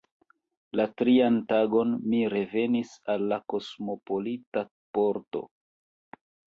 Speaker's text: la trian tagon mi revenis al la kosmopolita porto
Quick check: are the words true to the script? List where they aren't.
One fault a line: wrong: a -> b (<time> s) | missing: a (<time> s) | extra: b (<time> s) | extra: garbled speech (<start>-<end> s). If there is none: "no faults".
no faults